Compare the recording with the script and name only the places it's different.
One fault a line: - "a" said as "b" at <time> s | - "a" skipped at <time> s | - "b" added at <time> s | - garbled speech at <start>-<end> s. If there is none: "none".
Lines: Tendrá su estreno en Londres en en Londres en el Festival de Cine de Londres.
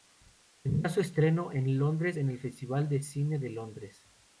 - "en Londres en" skipped at 2.3 s